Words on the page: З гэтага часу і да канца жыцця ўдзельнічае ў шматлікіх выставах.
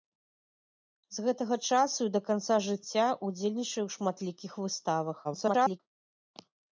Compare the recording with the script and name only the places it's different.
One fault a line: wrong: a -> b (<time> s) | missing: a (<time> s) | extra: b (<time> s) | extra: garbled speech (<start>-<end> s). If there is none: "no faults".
extra: garbled speech (5.2-5.8 s)